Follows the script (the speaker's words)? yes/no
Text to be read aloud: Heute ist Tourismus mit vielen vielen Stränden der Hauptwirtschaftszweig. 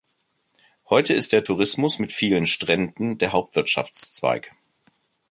no